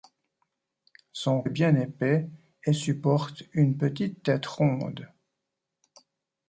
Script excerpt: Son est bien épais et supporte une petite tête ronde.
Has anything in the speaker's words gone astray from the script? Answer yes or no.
no